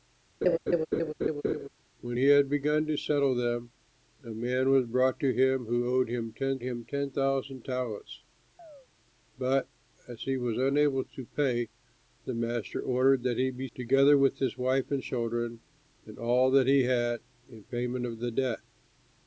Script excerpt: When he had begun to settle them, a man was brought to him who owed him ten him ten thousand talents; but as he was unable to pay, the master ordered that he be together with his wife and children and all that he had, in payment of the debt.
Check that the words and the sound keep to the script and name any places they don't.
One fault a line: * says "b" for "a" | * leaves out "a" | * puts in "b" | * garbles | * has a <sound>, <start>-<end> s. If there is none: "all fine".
* has a laugh, 0.4-1.7 s
* has a chirp, 8.6-8.9 s